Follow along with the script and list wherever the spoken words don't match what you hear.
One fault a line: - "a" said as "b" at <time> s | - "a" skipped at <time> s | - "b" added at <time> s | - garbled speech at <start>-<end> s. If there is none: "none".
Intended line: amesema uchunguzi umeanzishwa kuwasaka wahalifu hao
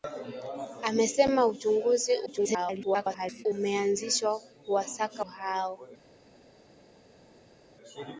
- garbled speech at 2.3-3.5 s
- "wahalifu" skipped at 5.3 s